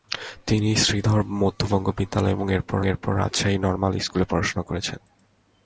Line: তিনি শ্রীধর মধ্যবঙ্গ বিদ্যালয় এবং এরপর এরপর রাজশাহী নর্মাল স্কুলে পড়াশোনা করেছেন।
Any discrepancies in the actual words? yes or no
no